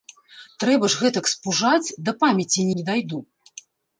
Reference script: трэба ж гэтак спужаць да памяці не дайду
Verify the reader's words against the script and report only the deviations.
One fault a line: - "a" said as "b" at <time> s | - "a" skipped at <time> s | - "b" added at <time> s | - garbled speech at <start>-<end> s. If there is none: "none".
none